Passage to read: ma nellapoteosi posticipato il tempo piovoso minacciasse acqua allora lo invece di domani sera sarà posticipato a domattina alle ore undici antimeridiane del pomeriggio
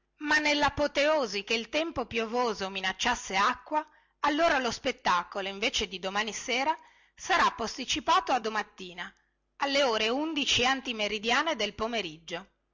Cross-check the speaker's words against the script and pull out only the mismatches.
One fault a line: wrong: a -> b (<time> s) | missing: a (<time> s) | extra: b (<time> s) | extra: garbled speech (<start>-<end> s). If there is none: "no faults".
wrong: posticipato -> che (1.4 s)
extra: spettacolo (4.7 s)